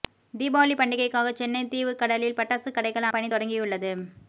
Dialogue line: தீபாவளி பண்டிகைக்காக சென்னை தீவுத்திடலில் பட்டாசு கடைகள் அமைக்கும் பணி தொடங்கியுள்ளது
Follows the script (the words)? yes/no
no